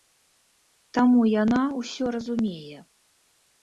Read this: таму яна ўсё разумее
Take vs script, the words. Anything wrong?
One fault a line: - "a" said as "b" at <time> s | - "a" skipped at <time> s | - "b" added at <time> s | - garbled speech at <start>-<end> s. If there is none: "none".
none